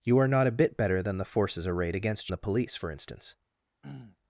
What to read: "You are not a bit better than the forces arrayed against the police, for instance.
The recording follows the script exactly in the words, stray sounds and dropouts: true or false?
false